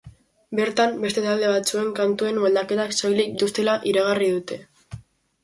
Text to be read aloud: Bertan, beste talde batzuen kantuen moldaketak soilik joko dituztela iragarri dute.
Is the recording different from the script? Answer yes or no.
yes